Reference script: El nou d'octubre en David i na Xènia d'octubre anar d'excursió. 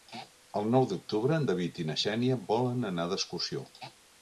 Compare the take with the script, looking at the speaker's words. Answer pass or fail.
fail